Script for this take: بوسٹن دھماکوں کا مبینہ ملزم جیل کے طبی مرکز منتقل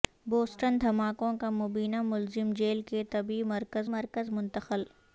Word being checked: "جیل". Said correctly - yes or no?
yes